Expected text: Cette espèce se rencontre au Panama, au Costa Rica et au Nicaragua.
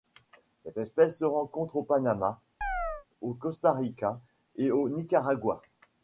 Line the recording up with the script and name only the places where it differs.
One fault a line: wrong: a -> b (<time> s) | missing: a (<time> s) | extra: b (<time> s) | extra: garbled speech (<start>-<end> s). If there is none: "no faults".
no faults